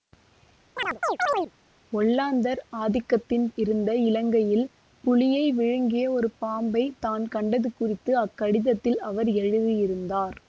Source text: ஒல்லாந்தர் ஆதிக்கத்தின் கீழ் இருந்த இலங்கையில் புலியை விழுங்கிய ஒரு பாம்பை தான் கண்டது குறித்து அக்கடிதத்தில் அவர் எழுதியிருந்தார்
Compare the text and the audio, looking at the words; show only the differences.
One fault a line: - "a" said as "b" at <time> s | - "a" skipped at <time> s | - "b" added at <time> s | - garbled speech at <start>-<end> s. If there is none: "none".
- "கீழ்" skipped at 3.5 s